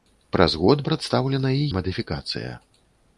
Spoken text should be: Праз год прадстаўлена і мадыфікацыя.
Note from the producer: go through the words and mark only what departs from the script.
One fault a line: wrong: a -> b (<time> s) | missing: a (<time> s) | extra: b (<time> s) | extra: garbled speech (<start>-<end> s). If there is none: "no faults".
no faults